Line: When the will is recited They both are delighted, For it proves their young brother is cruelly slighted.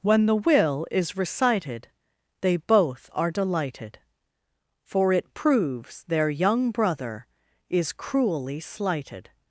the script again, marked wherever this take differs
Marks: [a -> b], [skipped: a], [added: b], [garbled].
When the will is recited They both are delighted, For it proves their young brother is cruelly slighted.